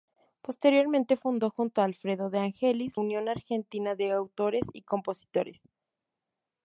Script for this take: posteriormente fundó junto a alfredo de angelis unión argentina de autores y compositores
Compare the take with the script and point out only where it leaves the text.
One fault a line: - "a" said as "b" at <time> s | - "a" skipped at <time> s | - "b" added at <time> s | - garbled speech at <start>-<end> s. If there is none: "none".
none